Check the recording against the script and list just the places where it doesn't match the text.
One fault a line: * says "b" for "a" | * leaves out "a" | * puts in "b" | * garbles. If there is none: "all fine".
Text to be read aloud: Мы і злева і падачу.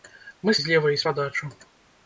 all fine